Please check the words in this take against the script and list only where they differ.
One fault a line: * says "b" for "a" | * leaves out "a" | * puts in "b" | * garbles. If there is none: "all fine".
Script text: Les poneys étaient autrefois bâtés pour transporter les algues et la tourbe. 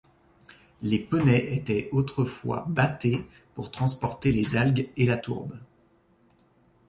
all fine